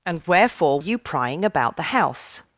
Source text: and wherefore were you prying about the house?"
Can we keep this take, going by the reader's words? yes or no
no